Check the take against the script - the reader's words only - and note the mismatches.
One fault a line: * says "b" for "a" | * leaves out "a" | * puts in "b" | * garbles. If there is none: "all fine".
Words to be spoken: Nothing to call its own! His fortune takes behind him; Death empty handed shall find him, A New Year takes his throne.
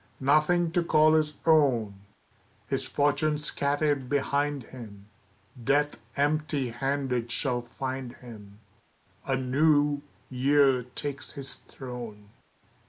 * says "his" for "its"
* says "scattered" for "takes"